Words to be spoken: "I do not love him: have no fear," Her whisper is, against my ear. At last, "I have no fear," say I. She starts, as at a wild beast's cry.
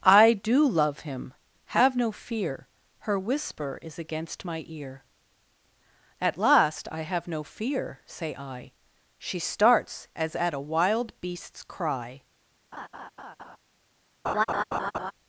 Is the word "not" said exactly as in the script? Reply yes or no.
no